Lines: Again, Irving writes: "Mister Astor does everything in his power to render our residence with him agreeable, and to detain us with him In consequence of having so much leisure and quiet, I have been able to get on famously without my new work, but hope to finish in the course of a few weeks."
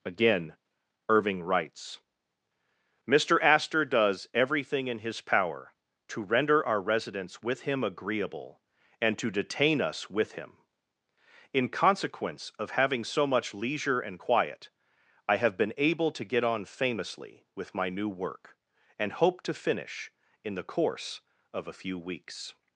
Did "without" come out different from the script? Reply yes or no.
yes